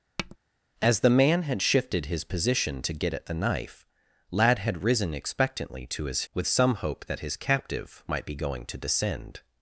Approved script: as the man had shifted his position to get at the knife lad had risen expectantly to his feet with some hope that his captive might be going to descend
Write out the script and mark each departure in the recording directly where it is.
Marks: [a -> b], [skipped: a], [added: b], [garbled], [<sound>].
[tap] as the man had shifted his position to get at the knife lad had risen expectantly to his [skipped: feet] with some hope that his captive might be going to descend